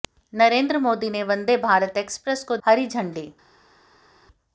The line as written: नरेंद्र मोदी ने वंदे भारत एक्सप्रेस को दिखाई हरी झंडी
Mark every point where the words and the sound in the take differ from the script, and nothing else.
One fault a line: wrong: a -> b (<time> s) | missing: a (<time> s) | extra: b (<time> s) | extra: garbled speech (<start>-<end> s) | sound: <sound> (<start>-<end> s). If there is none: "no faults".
missing: दिखाई (2.6 s)